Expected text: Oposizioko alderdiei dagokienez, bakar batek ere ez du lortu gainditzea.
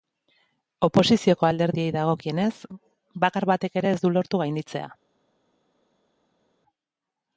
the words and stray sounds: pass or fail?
pass